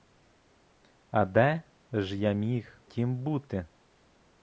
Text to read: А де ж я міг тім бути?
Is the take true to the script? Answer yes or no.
yes